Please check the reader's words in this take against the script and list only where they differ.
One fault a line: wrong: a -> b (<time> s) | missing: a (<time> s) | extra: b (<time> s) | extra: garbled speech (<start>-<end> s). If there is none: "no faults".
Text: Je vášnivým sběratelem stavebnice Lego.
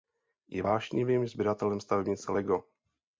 no faults